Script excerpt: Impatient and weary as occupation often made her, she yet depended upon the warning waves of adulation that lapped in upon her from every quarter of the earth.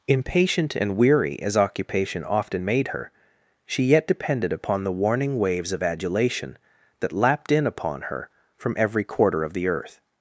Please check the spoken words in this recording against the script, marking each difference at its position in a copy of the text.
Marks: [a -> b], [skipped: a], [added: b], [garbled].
Impatient and weary as occupation often made her, she yet depended upon the warning waves of adulation that lapped in upon her from every quarter of the earth.